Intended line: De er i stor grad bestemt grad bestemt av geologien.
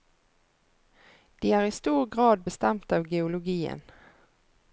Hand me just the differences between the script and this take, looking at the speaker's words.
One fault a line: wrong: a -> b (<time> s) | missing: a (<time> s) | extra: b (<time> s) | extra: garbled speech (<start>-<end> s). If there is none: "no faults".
missing: grad bestemt (2.9 s)